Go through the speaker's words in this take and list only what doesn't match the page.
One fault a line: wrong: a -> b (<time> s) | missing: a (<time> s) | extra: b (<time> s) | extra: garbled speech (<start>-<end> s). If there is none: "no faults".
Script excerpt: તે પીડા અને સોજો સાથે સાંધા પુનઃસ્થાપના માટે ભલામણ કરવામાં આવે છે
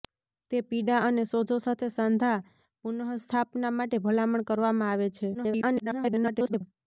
extra: garbled speech (5.3-6.6 s)